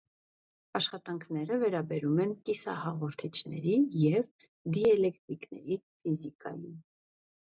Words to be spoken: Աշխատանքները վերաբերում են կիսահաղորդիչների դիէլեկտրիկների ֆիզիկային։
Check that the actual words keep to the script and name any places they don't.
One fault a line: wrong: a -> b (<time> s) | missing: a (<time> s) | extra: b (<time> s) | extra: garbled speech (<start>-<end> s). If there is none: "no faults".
extra: և (4.0 s)